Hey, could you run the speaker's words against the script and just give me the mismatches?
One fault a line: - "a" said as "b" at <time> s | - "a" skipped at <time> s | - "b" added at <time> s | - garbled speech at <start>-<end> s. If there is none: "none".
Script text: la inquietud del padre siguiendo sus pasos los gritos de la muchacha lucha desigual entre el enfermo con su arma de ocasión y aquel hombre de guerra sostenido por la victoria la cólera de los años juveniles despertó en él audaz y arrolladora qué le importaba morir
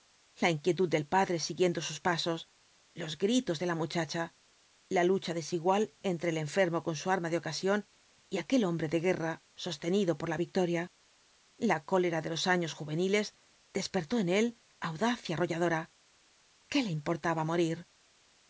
- "la" added at 4.9 s